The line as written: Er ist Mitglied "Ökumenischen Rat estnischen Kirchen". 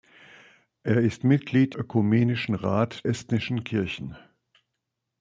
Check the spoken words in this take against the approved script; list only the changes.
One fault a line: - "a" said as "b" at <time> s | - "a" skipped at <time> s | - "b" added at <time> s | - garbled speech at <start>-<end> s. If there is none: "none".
none